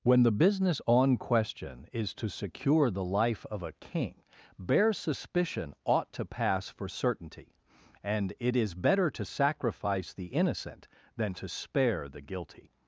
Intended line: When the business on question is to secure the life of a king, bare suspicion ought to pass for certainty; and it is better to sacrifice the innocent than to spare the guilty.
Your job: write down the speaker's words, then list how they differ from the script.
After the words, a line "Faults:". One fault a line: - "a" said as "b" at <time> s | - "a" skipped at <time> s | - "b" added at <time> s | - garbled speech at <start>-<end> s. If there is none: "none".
When the business on question is to secure the life of a king, bare suspicion ought to pass for certainty; and it is better to sacrifice the innocent than to spare the guilty.
Faults:
none